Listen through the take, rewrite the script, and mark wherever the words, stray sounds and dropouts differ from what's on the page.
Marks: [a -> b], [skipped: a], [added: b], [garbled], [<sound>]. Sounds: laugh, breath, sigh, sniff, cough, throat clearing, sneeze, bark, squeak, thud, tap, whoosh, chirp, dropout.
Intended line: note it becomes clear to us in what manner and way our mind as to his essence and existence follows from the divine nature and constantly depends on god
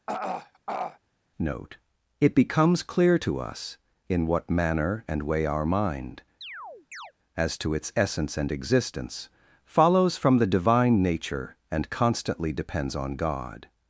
[throat clearing] note it becomes clear to us in what manner and way our mind [chirp] as to [his -> its] essence and existence follows from the divine nature and constantly depends on god